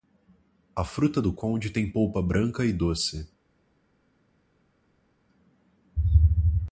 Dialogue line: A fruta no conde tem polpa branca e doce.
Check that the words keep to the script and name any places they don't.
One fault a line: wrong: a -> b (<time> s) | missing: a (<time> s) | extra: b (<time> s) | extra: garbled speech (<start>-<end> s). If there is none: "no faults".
wrong: no -> do (1.2 s)